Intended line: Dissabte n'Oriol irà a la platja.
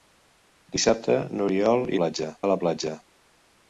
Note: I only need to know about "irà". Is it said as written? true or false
false